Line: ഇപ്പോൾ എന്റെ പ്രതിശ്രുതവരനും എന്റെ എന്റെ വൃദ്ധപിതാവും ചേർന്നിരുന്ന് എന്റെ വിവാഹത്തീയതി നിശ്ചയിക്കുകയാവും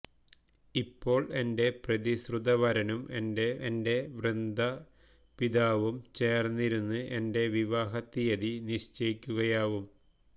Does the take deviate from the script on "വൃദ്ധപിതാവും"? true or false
false